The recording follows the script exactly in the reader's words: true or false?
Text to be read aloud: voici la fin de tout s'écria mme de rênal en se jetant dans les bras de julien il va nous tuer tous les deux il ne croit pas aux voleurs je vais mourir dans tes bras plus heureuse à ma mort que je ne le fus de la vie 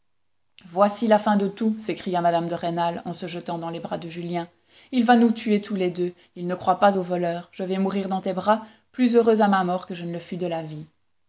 true